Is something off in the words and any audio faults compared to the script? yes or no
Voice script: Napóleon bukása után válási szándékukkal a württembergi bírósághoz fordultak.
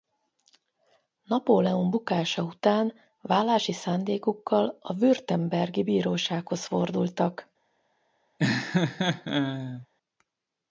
yes